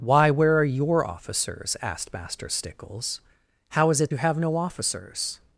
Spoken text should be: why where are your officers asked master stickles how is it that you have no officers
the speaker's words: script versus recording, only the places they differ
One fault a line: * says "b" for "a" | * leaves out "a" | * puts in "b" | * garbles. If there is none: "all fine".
* leaves out "that"